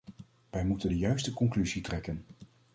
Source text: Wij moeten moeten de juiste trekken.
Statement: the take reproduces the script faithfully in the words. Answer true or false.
false